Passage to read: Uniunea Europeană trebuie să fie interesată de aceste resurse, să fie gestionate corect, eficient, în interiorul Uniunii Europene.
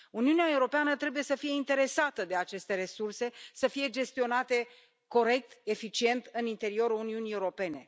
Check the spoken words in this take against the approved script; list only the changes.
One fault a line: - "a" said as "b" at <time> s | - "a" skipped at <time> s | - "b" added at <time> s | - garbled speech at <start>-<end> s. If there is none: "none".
none